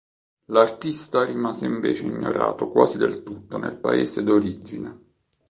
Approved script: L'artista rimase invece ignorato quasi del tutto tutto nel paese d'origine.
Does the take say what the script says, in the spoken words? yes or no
no